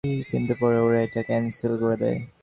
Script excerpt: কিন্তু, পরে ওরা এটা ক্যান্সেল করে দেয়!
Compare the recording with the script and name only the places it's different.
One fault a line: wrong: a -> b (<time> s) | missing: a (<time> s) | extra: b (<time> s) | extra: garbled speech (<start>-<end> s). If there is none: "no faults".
no faults